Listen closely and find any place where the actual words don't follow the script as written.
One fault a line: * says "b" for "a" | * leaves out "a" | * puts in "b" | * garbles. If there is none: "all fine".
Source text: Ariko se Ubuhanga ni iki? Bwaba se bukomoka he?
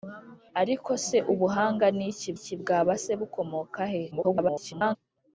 * puts in "iki"
* garbles